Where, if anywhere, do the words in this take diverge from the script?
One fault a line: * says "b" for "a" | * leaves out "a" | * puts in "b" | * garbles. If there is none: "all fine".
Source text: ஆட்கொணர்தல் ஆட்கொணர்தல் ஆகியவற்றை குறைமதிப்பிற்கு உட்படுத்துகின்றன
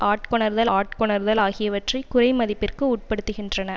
all fine